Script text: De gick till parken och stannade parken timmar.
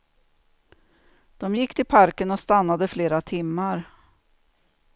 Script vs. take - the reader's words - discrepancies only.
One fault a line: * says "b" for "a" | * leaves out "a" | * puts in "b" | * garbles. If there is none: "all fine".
* says "flera" for "parken"